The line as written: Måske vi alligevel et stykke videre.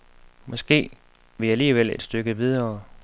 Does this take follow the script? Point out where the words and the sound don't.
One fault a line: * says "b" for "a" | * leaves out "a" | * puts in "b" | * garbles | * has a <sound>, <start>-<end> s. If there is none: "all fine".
all fine